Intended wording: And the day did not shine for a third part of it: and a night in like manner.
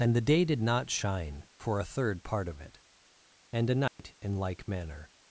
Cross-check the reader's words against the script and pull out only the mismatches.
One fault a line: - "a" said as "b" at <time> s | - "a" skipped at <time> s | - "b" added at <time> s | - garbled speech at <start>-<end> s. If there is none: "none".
none